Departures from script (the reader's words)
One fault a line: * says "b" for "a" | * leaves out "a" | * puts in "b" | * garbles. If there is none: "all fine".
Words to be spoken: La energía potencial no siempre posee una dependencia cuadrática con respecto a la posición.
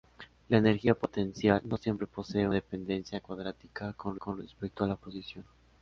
* leaves out "una"
* puts in "con"